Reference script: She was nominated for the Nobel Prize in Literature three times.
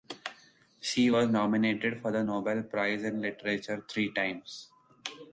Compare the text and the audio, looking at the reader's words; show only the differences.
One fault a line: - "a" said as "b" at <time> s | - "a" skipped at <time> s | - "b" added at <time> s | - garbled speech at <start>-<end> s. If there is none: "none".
none